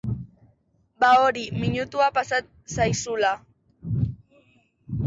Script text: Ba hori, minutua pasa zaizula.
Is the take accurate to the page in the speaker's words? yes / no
yes